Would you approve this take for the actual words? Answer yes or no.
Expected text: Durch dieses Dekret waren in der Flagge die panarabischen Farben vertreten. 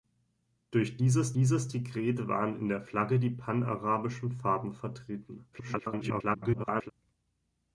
no